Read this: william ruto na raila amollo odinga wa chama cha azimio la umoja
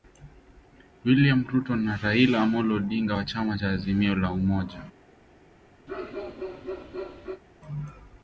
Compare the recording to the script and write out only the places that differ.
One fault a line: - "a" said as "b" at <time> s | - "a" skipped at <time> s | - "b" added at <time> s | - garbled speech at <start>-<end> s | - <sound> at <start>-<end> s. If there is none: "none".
- bark at 5.9-7.4 s